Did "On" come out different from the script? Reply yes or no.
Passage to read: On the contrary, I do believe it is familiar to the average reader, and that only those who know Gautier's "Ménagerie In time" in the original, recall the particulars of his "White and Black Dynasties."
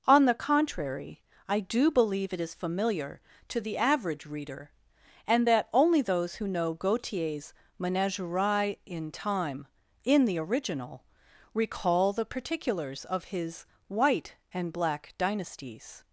no